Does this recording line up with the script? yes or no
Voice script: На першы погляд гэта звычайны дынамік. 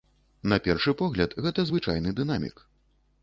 yes